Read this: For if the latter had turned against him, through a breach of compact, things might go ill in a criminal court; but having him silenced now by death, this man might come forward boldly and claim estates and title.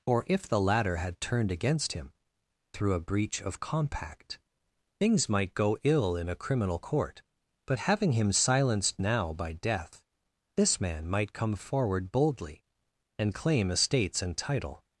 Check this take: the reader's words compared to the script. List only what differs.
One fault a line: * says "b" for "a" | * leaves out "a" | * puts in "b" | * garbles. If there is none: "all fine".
* says "Or" for "For"